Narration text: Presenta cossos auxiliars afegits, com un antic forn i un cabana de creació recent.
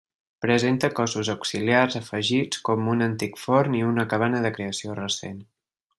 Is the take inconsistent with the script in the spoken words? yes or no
yes